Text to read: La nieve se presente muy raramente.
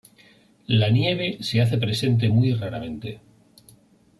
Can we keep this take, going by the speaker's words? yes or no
no